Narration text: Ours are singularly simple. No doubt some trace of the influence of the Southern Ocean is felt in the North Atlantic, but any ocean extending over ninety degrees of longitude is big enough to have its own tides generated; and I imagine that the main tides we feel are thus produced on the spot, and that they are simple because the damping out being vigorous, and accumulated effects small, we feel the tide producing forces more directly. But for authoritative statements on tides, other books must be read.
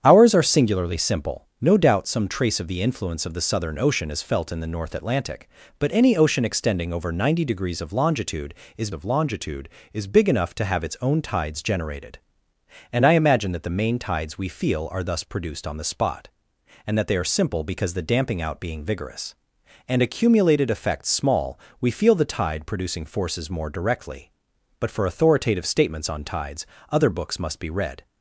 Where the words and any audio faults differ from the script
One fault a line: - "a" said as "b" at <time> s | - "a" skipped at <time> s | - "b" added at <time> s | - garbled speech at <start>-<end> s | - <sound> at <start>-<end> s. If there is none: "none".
- "of longitude is" added at 8.9 s